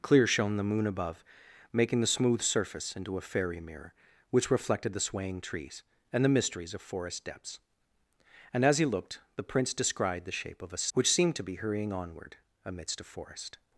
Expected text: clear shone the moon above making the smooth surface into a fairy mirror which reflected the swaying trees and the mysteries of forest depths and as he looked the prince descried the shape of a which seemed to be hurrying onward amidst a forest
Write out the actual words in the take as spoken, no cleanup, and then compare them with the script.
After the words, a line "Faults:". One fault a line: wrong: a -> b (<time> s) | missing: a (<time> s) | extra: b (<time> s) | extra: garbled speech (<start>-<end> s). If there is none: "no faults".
clear shone the moon above making the smooth surface into a fairy mirror which reflected the swaying trees and the mysteries of forest depths and as he looked the prince descried the shape of a which seemed to be hurrying onward amidst a forest
Faults:
no faults